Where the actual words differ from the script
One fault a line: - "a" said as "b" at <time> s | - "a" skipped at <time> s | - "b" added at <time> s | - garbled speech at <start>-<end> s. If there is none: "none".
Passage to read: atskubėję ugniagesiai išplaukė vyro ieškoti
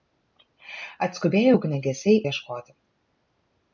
- "išplaukė vyro" skipped at 2.1 s